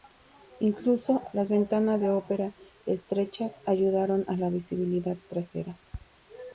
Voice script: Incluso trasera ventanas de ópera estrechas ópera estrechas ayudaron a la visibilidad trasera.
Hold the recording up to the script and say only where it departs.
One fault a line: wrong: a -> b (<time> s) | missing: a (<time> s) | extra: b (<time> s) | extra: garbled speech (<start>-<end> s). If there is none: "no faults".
wrong: trasera -> las (1.3 s)
missing: ópera estrechas (3.6 s)